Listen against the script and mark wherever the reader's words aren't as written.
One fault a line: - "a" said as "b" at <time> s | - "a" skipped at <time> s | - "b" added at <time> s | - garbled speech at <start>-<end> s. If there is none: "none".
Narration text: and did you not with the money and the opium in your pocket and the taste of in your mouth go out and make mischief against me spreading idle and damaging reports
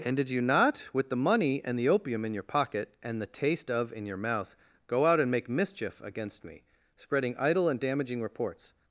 none